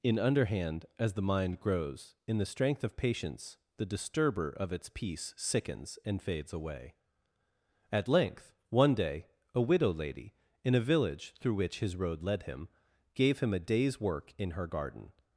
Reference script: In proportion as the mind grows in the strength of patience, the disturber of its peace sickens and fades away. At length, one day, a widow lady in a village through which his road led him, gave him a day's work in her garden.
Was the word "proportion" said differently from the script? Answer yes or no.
yes